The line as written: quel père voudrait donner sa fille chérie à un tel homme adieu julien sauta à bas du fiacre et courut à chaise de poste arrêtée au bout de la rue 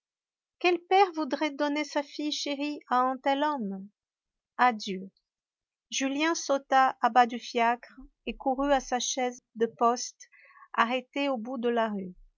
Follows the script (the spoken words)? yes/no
no